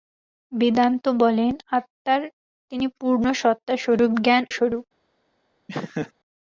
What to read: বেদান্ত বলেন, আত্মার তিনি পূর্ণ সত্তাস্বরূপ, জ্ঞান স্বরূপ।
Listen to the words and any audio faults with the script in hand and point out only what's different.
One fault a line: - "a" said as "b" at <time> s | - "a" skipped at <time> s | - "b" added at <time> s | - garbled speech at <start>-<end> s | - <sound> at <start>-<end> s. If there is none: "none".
- laugh at 5.7-6.1 s